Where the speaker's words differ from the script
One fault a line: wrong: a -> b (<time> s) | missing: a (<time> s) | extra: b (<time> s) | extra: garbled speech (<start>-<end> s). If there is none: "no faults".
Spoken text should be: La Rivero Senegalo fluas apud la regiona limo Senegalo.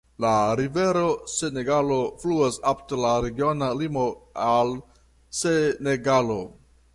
extra: al (4.3 s)